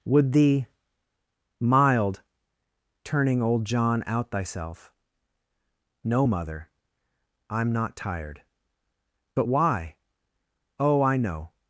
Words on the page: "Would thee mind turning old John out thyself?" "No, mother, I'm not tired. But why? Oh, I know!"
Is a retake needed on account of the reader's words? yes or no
yes